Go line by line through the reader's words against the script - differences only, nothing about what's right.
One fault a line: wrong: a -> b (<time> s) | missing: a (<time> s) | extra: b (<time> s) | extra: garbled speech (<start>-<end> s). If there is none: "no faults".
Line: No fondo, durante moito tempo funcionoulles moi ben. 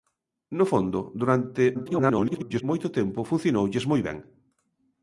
extra: garbled speech (1.7-2.6 s)